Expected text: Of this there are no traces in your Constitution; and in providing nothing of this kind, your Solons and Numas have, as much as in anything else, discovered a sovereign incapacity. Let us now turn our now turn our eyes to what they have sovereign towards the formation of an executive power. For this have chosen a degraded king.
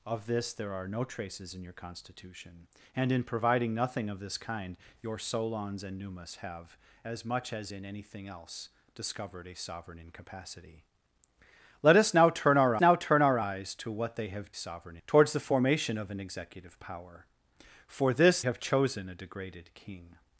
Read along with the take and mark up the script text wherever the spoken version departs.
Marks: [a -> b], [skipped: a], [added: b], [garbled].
Of this there are no traces in your Constitution; and in providing nothing of this kind, your Solons and Numas have, as much as in anything else, discovered a sovereign incapacity. Let us now turn our now turn our eyes to what they have sovereign towards the formation of an executive power. For this have chosen a degraded king.